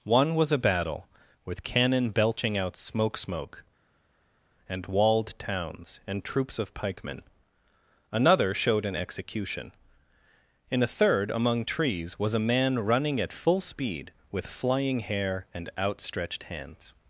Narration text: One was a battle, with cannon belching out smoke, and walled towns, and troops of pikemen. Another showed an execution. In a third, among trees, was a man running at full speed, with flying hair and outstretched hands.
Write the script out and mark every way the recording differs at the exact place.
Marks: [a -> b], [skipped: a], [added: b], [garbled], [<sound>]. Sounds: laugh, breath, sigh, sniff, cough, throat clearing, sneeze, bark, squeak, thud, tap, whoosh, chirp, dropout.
One was a battle, with cannon belching out smoke, [added: smoke] and walled towns, and troops of pikemen. Another showed an execution. In a third, among trees, was a man running at full speed, with flying hair and outstretched hands.